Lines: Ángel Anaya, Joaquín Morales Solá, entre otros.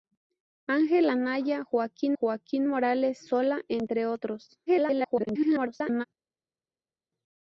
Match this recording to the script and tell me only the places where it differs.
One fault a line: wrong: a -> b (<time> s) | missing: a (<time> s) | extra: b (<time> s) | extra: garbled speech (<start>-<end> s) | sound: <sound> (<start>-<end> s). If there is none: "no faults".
extra: Joaquín (2.1 s)
extra: garbled speech (4.7-6.0 s)